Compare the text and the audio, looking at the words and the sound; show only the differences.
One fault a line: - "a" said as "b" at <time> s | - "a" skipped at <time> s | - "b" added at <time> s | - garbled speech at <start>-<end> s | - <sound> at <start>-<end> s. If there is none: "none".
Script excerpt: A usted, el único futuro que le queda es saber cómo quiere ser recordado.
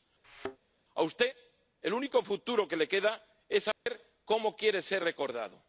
- thud at 0.2-0.6 s
- dropout at 3.7-3.9 s